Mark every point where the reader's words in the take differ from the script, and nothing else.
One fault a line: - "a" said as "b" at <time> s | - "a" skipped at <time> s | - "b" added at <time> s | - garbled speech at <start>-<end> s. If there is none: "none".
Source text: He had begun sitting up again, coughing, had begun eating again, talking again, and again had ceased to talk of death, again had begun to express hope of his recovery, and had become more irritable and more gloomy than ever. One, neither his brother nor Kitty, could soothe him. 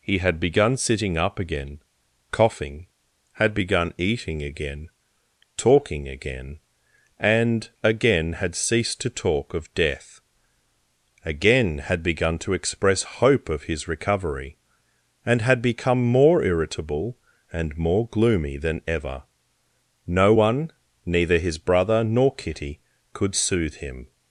- "No" added at 20.1 s